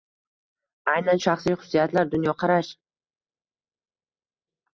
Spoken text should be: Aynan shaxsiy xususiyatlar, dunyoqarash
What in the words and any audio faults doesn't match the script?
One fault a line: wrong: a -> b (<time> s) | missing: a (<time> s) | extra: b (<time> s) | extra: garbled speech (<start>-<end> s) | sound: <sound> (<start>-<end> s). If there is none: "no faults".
no faults